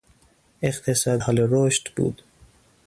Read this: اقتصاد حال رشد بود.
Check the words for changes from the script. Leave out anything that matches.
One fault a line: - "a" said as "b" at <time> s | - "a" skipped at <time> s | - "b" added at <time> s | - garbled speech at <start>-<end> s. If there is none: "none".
none